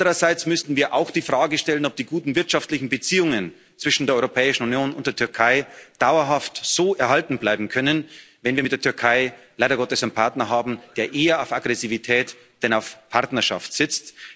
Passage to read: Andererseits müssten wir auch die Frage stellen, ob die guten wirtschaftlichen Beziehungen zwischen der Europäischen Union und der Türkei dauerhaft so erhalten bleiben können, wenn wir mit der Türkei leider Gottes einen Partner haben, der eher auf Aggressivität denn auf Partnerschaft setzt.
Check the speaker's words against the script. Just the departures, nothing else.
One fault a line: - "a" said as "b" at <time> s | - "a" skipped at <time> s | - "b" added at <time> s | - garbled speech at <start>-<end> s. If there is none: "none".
none